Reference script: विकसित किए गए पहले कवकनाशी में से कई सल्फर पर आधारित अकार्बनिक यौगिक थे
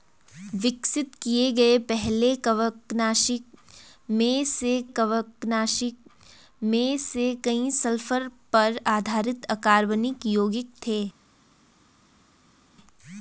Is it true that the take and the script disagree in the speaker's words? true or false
true